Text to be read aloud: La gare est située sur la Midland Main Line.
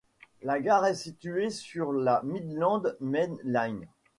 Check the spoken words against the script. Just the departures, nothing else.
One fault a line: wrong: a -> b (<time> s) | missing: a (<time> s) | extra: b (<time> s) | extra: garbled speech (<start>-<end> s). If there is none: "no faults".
no faults